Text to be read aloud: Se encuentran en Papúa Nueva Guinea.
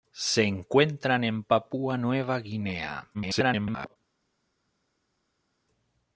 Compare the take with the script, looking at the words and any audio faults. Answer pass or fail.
fail